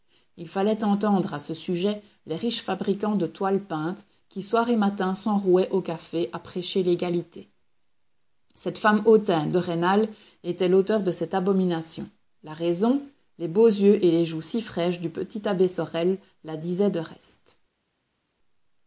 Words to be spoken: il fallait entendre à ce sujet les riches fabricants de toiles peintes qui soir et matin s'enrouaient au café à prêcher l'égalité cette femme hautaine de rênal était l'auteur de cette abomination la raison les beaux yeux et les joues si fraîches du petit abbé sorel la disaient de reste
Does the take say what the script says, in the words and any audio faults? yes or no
yes